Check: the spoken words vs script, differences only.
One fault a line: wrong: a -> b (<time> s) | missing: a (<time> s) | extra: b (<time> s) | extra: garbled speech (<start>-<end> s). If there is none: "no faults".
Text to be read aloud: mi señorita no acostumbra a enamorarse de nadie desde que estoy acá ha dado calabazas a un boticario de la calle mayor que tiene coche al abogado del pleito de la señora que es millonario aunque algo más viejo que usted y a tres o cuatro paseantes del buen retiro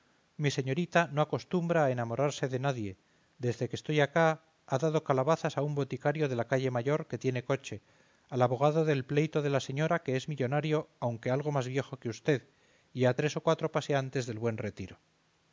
no faults